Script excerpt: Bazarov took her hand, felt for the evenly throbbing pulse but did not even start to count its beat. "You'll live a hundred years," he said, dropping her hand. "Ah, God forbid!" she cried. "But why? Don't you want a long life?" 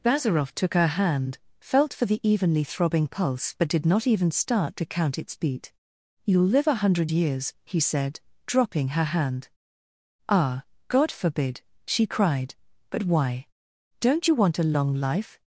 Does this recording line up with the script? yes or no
yes